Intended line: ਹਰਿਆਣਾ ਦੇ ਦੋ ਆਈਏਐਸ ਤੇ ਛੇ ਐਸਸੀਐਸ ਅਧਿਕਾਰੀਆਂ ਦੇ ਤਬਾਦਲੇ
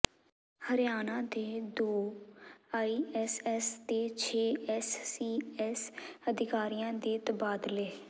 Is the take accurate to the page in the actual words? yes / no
yes